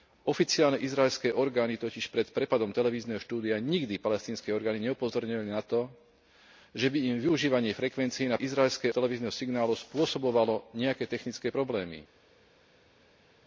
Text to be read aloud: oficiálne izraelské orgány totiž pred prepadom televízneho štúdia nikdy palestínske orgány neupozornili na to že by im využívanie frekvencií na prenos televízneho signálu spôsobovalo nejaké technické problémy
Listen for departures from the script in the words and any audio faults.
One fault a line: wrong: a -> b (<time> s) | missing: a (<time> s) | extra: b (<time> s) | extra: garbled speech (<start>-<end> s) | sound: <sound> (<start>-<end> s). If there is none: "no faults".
wrong: prenos -> izraelské (8.4 s)